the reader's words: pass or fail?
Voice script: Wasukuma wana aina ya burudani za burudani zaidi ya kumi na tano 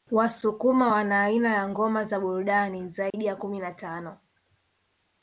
fail